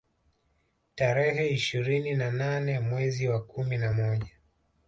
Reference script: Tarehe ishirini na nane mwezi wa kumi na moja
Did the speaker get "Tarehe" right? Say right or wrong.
right